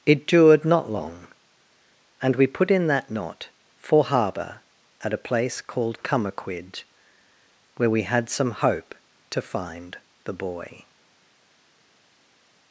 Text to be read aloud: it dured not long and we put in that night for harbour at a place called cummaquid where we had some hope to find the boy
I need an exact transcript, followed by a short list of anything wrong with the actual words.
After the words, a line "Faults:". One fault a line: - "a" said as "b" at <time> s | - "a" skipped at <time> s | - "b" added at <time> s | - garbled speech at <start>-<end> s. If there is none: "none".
it dured not long and we put in that knot for harbour at a place called cummaquid where we had some hope to find the boy
Faults:
- "night" said as "knot" at 3.1 s